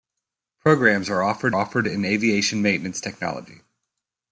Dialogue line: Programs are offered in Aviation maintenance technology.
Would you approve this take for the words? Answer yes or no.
no